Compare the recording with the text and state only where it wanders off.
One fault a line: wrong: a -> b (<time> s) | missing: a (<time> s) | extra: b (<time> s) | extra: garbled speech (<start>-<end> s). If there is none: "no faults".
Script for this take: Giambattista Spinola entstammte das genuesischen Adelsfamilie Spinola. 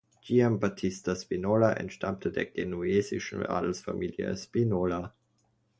wrong: das -> der (2.3 s)